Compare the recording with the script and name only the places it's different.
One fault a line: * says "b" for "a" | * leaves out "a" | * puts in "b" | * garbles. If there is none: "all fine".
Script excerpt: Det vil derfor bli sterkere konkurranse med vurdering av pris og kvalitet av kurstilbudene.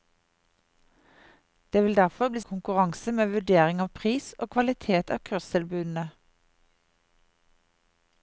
* leaves out "sterkere"